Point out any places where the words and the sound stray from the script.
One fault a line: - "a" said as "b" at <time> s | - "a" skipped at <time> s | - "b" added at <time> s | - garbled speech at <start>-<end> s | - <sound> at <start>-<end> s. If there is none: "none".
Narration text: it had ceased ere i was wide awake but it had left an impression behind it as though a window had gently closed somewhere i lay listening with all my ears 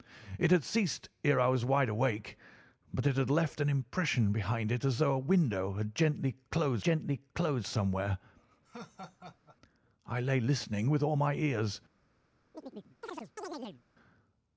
- "gently closed" added at 6.8 s
- laugh at 8.6-9.6 s
- chirp at 12.5-13.8 s